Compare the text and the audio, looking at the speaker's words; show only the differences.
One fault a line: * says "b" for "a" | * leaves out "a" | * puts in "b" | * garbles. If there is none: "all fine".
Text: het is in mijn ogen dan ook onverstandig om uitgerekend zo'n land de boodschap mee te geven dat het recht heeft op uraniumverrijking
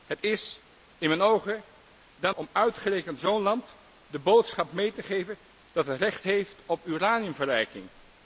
* leaves out "ook onverstandig"